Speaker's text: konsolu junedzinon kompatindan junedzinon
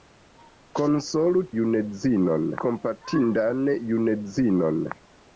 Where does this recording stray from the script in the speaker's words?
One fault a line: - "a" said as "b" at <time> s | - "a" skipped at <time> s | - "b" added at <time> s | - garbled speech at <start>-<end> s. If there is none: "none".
none